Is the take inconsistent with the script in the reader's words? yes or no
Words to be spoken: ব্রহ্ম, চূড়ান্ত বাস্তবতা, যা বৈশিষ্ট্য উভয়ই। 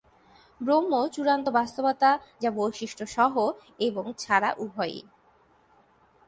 yes